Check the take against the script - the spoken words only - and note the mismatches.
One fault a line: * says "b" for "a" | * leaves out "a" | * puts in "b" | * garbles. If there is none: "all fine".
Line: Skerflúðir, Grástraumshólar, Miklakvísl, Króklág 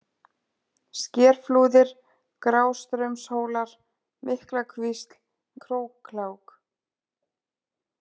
all fine